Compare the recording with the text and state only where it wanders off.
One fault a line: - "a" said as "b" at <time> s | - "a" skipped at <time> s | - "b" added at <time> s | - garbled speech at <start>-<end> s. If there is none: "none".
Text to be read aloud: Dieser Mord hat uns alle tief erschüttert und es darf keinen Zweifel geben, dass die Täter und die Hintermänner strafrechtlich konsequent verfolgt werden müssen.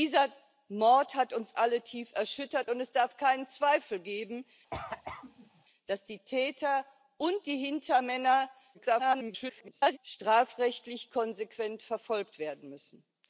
- garbled speech at 8.7-10.0 s